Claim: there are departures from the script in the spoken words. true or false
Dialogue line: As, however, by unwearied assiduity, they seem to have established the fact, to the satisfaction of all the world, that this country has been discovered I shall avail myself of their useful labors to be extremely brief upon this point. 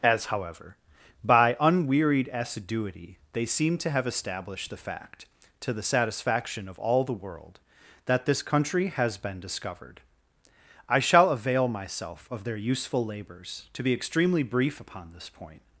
false